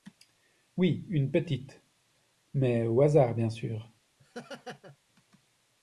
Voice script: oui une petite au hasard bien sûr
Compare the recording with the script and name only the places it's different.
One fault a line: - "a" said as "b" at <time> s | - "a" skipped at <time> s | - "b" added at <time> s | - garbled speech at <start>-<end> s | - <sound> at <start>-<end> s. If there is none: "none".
- "mais" added at 2.5 s
- laugh at 4.2-5.0 s